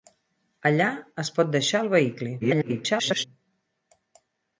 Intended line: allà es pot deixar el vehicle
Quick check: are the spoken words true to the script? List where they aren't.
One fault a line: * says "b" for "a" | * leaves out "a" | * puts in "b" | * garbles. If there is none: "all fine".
* garbles